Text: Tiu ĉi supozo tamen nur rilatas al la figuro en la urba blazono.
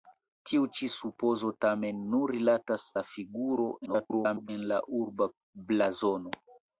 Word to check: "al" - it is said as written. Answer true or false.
false